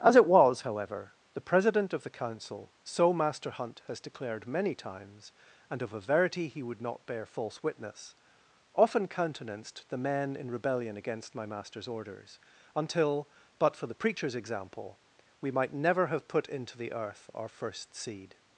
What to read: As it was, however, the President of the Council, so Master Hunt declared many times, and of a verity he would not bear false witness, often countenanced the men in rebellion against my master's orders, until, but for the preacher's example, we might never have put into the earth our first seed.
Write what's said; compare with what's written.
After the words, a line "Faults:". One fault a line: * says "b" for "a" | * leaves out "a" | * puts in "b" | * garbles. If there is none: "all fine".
As it was, however, the President of the Council, so Master Hunt has declared many times, and of a verity he would not bear false witness, often countenanced the men in rebellion against my master's orders, until, but for the preacher's example, we might never have put into the earth our first seed.
Faults:
* puts in "has"